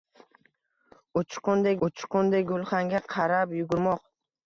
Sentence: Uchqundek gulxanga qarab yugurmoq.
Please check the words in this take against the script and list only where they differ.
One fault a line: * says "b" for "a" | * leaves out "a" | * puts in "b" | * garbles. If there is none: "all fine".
* puts in "uchqundek"